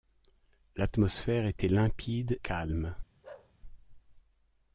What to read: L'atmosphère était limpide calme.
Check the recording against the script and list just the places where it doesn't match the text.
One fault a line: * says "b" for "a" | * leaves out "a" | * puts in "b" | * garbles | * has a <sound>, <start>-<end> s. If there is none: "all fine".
* has a bark, 3.2-3.5 s